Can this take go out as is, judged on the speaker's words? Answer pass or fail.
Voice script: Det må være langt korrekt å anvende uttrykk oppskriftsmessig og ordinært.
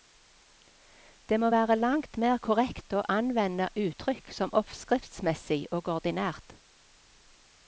fail